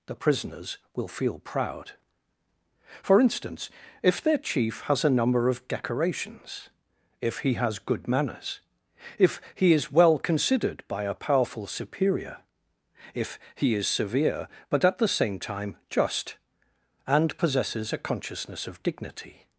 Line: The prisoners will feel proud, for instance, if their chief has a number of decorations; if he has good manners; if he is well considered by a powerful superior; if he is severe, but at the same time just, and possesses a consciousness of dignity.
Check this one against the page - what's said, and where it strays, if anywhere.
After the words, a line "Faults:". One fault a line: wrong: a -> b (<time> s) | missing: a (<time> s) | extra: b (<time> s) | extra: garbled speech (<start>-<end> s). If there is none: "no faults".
The prisoners will feel proud, for instance, if their chief has a number of decorations; if he has good manners; if he is well considered by a powerful superior; if he is severe, but at the same time just, and possesses a consciousness of dignity.
Faults:
no faults